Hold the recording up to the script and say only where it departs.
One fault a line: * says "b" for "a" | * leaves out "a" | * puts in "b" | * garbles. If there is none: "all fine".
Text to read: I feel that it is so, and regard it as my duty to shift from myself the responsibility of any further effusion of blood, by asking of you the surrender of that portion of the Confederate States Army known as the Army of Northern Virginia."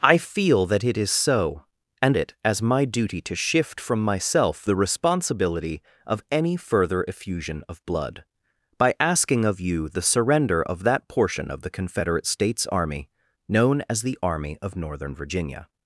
* leaves out "regard"